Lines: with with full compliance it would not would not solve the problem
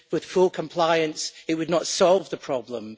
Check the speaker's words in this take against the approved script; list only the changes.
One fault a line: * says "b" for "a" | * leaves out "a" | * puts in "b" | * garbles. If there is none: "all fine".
* leaves out "with"
* leaves out "would not"